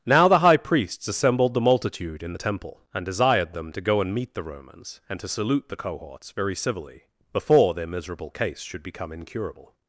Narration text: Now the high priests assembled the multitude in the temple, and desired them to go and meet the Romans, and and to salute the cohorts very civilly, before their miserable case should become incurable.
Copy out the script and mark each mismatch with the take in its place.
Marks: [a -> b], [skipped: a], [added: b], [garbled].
Now the high priests assembled the multitude in the temple, and desired them to go and meet the Romans, and [skipped: and] to salute the cohorts very civilly, before their miserable case should become incurable.